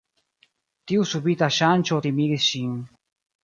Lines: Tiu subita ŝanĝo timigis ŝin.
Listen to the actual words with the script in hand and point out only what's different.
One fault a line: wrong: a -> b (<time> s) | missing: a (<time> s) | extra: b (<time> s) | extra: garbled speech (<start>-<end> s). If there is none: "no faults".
no faults